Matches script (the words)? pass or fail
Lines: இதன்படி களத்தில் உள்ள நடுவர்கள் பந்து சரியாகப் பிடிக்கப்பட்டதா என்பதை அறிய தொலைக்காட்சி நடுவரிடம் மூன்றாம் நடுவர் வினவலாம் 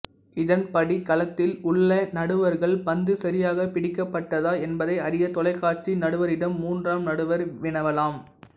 pass